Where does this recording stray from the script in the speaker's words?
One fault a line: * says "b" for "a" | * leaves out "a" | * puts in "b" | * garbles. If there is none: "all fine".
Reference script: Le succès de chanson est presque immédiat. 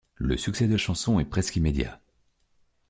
all fine